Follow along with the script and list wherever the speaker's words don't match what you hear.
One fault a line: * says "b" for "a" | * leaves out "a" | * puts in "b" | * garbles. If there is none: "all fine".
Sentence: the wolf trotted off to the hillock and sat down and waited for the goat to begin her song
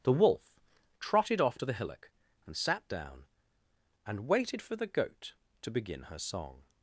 all fine